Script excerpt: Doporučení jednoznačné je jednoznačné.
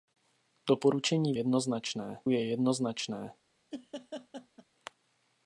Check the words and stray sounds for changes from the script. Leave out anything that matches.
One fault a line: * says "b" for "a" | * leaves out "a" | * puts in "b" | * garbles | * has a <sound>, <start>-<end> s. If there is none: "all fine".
* has a laugh, 3.7-4.6 s